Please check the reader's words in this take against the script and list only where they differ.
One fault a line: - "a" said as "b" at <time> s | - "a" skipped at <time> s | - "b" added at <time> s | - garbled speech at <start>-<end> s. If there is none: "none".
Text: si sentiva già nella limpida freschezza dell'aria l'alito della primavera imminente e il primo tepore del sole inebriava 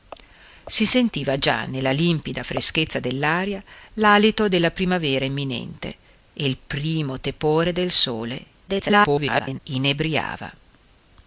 - garbled speech at 8.7-9.6 s